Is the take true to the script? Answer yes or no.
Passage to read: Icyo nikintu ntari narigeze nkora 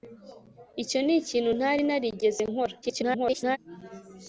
no